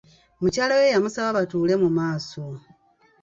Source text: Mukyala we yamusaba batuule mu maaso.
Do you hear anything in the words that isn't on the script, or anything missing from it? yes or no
no